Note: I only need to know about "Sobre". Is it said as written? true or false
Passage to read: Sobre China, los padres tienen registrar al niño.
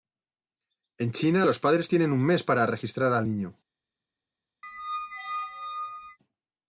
false